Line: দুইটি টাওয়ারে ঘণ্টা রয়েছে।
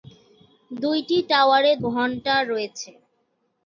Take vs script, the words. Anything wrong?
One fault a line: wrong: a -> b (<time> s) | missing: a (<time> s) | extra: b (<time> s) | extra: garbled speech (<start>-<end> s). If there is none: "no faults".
no faults